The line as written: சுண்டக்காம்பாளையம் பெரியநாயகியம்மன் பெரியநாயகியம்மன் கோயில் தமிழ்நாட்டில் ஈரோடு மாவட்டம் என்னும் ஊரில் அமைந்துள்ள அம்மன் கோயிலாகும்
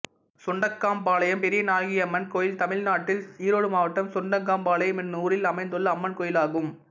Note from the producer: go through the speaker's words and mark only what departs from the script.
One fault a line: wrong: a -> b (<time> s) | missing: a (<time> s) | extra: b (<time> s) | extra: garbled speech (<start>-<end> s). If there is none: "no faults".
missing: பெரியநாயகியம்மன் (2.3 s)
extra: சுண்டக்காம்பாளையம் (4.1 s)